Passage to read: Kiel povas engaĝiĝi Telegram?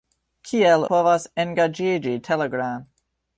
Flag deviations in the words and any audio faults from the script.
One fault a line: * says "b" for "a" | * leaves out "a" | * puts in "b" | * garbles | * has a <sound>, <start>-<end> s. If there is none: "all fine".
all fine